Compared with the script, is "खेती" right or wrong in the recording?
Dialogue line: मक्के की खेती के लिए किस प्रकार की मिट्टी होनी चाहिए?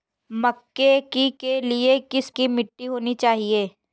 wrong